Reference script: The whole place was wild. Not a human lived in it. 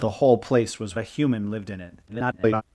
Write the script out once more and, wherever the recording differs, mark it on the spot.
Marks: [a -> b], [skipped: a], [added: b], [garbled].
The whole place was [skipped: wild. Not] a human lived in it. [garbled]